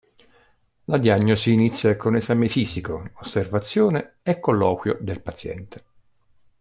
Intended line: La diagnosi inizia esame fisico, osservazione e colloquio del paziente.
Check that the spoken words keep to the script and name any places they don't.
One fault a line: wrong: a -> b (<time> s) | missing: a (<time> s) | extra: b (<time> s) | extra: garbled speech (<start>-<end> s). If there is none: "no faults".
extra: con (1.9 s)